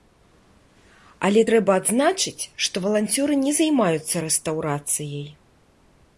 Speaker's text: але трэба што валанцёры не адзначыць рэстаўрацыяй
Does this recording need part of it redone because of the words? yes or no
yes